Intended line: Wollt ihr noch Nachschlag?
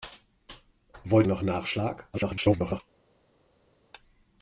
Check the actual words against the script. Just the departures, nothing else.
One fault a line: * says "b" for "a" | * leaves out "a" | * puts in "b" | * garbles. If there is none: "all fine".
* leaves out "ihr"
* garbles